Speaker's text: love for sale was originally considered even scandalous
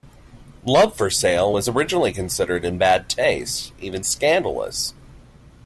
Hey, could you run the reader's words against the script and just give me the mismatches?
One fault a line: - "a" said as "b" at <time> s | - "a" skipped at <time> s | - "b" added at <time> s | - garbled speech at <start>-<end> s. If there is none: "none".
- "in bad taste" added at 2.6 s